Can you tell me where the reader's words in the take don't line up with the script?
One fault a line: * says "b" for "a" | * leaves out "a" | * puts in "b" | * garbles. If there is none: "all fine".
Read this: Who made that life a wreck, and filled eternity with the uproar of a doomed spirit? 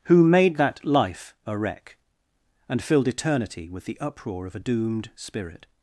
all fine